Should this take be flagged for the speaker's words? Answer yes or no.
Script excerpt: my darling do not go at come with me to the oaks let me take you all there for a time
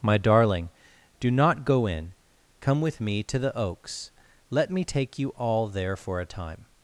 yes